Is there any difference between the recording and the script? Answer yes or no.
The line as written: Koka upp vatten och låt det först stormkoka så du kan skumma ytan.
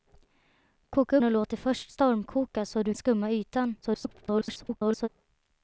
yes